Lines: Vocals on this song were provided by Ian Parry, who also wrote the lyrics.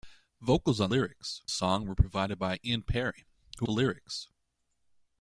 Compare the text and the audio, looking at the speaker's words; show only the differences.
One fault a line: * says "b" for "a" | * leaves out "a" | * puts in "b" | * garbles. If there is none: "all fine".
* says "lyrics" for "this"
* leaves out "also wrote"